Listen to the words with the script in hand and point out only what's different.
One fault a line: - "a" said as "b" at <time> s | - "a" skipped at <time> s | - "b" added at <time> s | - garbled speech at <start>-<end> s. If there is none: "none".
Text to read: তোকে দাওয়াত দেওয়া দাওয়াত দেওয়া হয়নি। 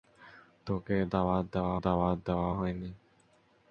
none